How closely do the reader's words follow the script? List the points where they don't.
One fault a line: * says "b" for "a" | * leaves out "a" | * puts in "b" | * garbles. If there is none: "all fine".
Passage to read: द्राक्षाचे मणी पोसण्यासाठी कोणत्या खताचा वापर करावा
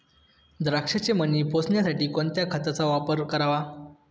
all fine